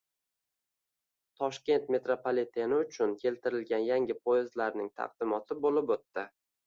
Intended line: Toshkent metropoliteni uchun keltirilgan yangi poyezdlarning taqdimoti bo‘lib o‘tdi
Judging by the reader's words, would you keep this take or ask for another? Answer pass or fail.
pass